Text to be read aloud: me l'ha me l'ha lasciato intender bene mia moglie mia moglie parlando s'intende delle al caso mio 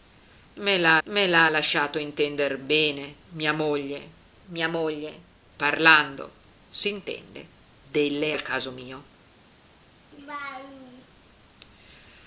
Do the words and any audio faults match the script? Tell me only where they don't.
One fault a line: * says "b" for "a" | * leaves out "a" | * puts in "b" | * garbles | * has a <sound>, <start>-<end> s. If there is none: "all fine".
* has a laugh, 10.1-11.1 s